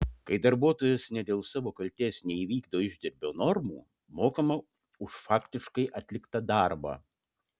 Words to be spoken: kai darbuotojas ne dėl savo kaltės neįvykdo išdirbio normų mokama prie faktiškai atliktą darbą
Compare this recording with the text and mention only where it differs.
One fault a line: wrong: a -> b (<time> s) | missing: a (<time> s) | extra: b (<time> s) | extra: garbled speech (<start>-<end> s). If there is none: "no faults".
wrong: prie -> už (5.1 s)